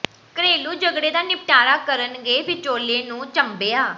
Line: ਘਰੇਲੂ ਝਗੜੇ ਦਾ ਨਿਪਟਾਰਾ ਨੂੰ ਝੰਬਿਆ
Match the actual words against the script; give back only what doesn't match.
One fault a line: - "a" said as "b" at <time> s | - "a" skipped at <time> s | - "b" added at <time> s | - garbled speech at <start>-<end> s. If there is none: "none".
- "ਕਰਨ ਗਏ ਵਿਚੋਲੇ" added at 1.8 s